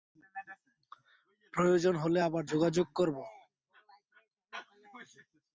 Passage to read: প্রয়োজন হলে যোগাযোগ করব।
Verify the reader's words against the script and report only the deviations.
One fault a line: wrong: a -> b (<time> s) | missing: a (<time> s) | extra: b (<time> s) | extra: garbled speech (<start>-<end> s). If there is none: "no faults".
extra: আবার (2.3 s)